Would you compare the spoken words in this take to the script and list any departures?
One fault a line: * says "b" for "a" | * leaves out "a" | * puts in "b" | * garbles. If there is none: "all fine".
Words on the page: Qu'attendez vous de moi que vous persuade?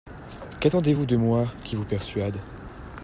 * says "qui" for "que"